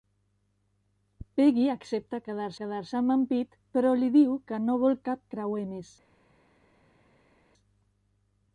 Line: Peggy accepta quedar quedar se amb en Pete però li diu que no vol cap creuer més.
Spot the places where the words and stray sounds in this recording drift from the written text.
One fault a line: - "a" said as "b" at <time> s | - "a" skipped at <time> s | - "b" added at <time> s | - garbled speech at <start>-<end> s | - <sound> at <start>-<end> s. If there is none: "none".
none